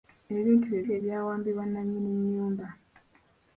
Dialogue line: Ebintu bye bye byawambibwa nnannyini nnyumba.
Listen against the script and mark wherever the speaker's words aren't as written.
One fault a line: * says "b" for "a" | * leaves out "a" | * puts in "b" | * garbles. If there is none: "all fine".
all fine